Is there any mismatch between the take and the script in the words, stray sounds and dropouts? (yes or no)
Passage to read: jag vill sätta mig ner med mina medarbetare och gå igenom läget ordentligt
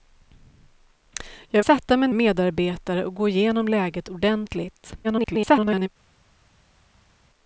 yes